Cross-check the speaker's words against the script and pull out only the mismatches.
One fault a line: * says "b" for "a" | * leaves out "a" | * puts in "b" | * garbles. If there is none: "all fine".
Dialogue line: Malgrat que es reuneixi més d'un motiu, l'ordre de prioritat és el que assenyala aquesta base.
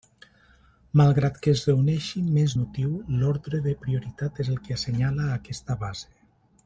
* leaves out "d'un"